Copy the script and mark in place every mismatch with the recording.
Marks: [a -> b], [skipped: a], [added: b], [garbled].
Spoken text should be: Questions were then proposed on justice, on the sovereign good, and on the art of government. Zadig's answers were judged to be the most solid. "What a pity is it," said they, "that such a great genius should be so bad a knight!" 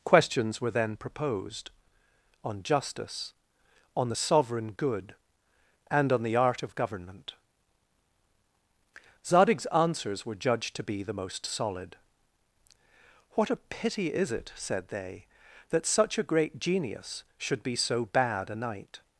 Questions were then proposed on justice, on the sovereign good, and on the art of government. Zadig's answers were judged to be the most solid. "What a pity is it," said they, "that such a great genius should be so bad a knight!"